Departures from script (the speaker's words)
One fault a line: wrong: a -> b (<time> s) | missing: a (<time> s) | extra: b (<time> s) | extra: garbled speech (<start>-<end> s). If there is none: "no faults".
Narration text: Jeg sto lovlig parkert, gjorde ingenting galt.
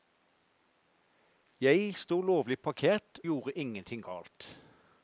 no faults